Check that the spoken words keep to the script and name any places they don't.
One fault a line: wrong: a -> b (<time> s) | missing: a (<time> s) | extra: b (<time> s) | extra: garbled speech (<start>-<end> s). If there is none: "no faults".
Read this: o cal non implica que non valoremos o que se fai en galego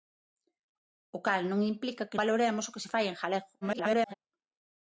missing: non (2.2 s)
extra: garbled speech (3.6-4.1 s)